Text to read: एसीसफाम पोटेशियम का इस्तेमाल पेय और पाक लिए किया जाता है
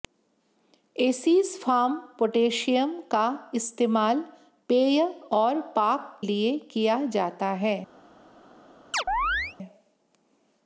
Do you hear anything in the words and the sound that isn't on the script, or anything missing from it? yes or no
yes